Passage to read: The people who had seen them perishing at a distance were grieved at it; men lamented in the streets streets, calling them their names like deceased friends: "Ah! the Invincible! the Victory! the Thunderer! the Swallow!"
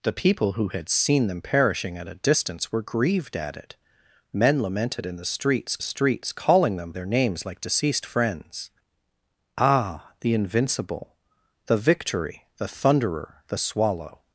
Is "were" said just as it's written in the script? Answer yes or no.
yes